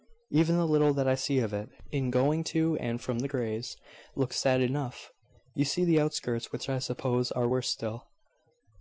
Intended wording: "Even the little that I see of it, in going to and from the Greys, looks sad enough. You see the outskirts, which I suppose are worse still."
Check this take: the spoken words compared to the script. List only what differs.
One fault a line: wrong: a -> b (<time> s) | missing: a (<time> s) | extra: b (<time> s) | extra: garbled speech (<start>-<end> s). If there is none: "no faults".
no faults